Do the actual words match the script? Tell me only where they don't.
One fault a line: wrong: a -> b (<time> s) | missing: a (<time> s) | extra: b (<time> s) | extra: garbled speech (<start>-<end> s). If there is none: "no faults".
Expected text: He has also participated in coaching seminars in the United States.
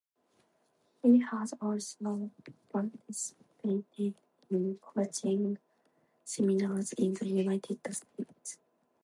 no faults